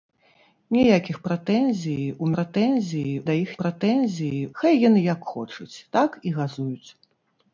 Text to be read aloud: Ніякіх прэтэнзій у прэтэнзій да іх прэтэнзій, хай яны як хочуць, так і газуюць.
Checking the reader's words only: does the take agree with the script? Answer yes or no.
yes